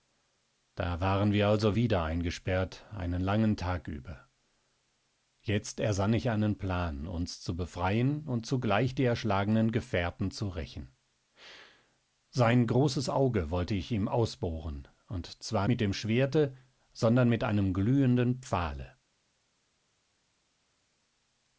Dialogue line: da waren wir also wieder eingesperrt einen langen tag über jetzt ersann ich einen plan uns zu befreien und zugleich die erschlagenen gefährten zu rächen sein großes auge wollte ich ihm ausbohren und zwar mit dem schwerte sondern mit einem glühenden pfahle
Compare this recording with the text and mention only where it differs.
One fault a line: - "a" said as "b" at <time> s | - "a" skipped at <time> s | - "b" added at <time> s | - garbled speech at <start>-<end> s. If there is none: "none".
none